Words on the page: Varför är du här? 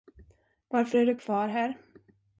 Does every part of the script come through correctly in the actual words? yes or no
no